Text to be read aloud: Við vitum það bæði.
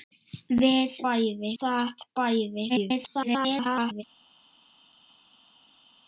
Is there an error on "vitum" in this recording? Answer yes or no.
yes